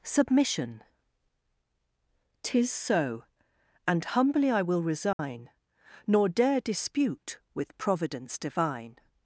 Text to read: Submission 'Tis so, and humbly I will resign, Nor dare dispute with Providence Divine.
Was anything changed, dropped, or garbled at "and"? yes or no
no